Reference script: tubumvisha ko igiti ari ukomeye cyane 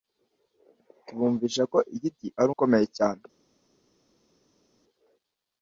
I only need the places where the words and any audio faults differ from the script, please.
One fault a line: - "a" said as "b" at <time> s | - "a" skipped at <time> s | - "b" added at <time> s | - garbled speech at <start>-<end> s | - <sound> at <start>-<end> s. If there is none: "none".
none